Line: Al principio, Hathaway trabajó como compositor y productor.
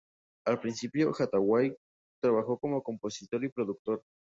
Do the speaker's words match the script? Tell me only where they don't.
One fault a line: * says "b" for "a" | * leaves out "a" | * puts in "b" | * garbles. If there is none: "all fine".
all fine